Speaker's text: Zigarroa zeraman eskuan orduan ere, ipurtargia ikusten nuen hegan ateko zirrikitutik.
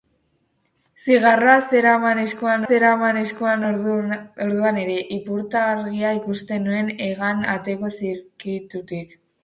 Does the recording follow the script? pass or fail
fail